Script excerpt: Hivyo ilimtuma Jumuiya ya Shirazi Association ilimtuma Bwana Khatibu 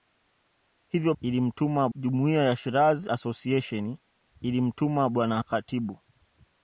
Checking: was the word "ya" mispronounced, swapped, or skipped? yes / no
no